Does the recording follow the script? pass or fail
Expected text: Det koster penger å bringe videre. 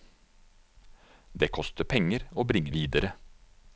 pass